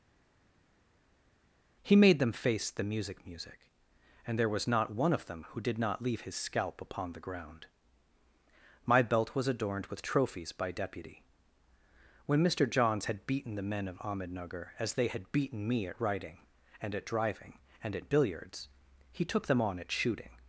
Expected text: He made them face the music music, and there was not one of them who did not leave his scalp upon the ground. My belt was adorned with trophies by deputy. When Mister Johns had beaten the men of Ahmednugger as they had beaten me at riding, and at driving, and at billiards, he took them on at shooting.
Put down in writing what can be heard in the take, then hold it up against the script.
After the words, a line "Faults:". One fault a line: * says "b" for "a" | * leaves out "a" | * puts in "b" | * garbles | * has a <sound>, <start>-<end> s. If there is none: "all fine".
He made them face the music music, and there was not one of them who did not leave his scalp upon the ground. My belt was adorned with trophies by deputy. When Mister Johns had beaten the men of Ahmednugger as they had beaten me at riding, and at driving, and at billiards, he took them on at shooting.
Faults:
all fine